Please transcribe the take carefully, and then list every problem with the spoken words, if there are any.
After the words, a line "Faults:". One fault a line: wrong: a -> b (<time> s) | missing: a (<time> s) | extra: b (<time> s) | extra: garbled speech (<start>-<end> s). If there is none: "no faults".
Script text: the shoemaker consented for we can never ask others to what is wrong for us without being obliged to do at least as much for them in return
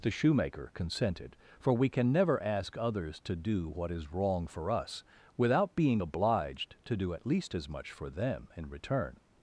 the shoemaker consented for we can never ask others to do what is wrong for us without being obliged to do at least as much for them in return
Faults:
extra: do (3.4 s)